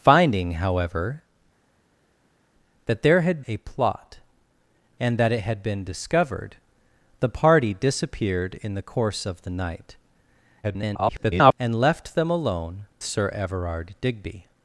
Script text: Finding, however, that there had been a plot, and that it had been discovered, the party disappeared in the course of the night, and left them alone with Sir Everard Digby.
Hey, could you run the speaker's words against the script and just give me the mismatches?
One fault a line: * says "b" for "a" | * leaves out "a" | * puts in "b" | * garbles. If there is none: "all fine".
* leaves out "been"
* garbles
* leaves out "with"